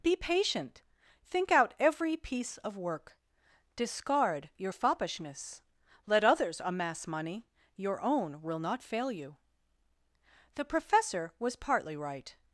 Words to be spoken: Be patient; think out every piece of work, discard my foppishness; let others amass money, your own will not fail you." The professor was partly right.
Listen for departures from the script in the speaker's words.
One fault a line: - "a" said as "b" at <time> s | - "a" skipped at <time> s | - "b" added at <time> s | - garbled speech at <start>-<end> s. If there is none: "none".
- "my" said as "your" at 4.6 s